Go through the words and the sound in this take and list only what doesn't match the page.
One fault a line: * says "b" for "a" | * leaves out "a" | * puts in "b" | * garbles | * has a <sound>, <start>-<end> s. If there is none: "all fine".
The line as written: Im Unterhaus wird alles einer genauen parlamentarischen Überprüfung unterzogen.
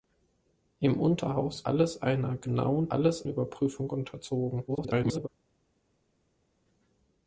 * leaves out "wird"
* says "alles" for "parlamentarischen"
* garbles